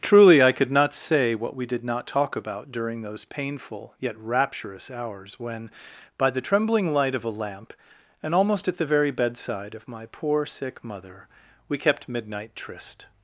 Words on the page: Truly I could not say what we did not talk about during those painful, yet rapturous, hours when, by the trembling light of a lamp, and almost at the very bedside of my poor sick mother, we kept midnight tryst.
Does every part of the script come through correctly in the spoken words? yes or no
yes